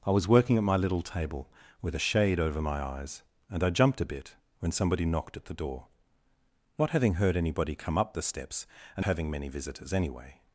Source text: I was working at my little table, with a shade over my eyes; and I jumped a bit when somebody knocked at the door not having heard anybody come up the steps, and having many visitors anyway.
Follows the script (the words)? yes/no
yes